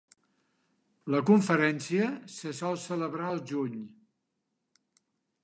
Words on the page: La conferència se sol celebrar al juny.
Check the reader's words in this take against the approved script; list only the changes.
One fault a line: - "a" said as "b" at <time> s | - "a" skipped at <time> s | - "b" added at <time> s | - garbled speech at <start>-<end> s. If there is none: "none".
none